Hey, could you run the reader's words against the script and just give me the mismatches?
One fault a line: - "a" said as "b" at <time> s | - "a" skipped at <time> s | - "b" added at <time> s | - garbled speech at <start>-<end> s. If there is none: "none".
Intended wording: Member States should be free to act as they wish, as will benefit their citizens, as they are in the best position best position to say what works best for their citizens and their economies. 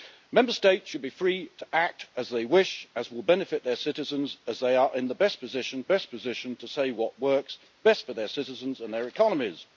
none